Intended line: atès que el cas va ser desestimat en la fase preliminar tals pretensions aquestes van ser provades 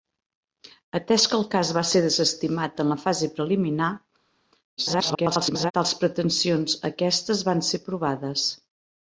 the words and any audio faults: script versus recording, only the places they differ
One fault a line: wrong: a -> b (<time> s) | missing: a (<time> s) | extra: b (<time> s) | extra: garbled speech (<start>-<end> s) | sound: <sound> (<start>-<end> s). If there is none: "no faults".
extra: garbled speech (4.8-5.7 s)